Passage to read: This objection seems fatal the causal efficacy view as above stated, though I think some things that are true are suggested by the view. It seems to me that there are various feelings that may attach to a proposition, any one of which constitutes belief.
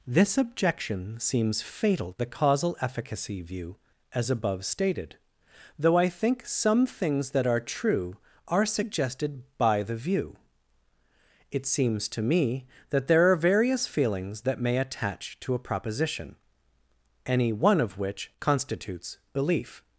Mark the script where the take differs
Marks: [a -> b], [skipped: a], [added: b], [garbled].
This objection seems fatal the causal efficacy view as above stated, though I think some things that are true are suggested by the view. It seems to me that there are various feelings that may attach to a proposition, any one of which constitutes belief.